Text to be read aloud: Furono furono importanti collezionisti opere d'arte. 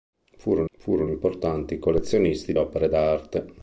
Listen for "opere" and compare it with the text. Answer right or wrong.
right